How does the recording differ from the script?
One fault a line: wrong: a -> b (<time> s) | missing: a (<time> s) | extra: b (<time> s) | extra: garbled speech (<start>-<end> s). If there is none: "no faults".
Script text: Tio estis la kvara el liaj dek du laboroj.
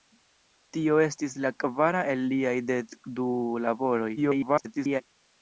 extra: garbled speech (4.2-5.0 s)